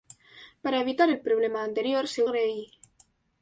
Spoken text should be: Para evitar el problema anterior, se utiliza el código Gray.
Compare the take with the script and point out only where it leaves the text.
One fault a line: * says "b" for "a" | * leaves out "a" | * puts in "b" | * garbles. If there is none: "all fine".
* leaves out "utiliza el código"